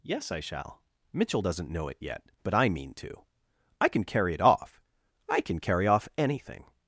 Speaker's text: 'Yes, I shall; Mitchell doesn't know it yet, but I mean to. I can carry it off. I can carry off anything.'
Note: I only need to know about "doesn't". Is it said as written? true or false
true